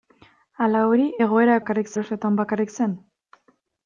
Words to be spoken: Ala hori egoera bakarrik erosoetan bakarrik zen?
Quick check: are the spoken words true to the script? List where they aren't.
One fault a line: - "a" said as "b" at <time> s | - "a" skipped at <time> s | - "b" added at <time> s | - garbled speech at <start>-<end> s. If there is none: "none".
none